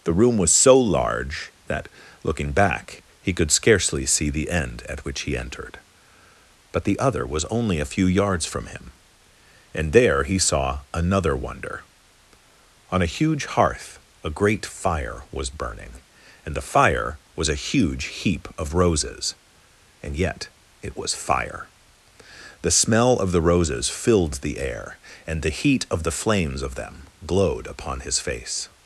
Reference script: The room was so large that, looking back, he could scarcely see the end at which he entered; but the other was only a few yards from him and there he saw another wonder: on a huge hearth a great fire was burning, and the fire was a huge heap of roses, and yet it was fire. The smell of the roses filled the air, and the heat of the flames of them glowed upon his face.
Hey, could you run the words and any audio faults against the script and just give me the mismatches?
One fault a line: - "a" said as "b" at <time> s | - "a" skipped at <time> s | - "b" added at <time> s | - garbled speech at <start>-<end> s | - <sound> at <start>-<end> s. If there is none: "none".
none